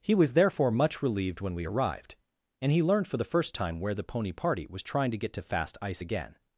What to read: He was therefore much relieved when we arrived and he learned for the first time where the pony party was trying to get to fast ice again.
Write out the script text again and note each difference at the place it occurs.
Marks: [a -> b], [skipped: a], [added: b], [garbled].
He was therefore much relieved when we arrived and he learned for the first time where the pony party was trying to get to fast ice again.